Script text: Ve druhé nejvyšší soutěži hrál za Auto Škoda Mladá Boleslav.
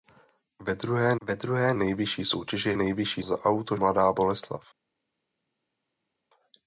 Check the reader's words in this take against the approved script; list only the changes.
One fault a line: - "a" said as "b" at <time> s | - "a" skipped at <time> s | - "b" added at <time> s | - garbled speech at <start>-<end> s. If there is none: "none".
- "ve druhé" added at 1.2 s
- "hrál" said as "nejvyšší" at 2.7 s
- "Škoda" skipped at 3.8 s